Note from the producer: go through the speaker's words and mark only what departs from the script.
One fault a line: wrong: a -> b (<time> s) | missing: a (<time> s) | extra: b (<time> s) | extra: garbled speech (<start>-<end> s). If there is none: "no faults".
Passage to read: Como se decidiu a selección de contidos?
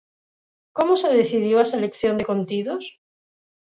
no faults